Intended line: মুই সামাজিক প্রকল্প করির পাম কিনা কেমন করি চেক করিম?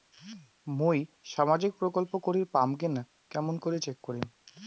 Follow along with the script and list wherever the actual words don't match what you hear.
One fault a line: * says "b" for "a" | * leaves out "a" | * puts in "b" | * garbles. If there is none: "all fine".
all fine